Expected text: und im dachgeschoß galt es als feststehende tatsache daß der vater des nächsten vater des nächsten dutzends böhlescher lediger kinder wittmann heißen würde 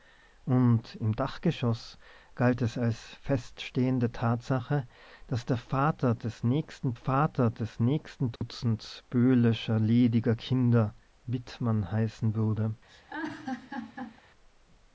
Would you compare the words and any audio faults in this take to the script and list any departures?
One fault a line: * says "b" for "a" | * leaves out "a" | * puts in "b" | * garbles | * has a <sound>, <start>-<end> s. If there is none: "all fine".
* has a dropout, 8.4-8.4 s
* has a laugh, 12.9-14.2 s